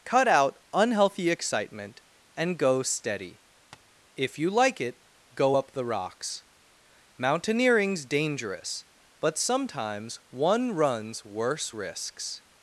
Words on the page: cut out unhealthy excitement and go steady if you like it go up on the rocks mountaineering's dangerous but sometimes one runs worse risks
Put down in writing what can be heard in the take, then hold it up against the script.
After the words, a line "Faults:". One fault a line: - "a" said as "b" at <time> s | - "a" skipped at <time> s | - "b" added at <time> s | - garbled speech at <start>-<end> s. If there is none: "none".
cut out unhealthy excitement and go steady if you like it go up the rocks mountaineering's dangerous but sometimes one runs worse risks
Faults:
- "on" skipped at 5.7 s